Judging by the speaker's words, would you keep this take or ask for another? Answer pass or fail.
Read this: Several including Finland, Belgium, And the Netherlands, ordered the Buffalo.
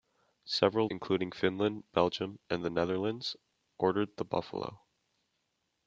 pass